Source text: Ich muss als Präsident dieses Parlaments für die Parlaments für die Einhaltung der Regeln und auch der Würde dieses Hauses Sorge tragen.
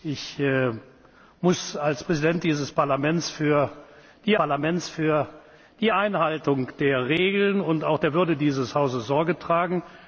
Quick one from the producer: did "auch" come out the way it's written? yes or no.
yes